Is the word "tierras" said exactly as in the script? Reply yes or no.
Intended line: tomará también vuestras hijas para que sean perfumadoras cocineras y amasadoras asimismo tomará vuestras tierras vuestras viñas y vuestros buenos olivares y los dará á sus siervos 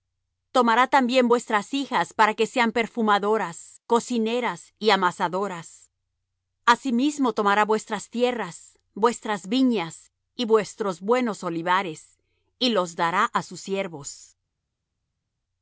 yes